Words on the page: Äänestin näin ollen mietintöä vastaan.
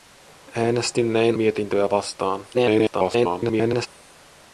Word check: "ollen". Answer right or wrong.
wrong